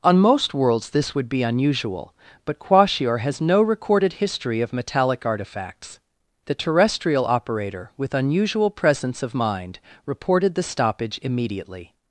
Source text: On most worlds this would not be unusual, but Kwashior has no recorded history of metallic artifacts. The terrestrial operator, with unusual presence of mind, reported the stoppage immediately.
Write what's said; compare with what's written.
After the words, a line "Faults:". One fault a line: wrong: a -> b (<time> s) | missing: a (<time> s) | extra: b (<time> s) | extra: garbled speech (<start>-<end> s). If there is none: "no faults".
On most worlds this would be unusual, but Kwashior has no recorded history of metallic artifacts. The terrestrial operator, with unusual presence of mind, reported the stoppage immediately.
Faults:
missing: not (1.3 s)